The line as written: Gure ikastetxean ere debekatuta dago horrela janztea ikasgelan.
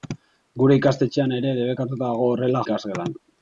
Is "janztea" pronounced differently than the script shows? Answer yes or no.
yes